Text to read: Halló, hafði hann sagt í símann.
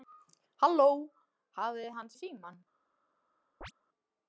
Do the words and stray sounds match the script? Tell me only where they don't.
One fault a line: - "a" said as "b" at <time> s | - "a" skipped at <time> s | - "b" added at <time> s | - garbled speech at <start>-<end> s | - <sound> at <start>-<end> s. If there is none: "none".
- "sagt" skipped at 2.1 s
- chirp at 3.6-3.7 s